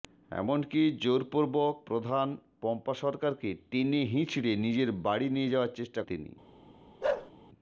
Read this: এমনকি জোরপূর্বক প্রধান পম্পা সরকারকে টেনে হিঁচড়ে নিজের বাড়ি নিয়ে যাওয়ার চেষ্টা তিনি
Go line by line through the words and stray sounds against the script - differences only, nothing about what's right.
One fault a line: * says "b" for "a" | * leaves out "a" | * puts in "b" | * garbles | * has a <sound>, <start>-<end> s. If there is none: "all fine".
* has a bark, 7.0-7.3 s